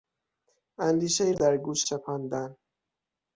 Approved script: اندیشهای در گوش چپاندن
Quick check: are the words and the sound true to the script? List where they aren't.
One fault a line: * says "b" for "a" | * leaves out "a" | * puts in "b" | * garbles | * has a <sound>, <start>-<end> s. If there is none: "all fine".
all fine